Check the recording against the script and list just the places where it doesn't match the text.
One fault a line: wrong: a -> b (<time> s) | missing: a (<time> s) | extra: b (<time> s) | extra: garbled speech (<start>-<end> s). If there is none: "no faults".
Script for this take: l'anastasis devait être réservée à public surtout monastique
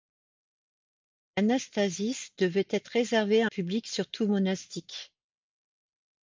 no faults